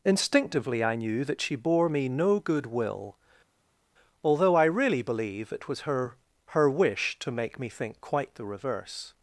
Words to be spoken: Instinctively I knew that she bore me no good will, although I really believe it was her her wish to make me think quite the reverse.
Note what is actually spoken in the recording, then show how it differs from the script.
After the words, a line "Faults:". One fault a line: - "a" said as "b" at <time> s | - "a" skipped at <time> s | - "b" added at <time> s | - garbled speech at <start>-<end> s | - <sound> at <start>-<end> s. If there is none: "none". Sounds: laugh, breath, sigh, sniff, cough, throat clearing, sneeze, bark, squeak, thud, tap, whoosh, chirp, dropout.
Instinctively I knew that she bore me no good will, although I really believe it was her her wish to make me think quite the reverse.
Faults:
none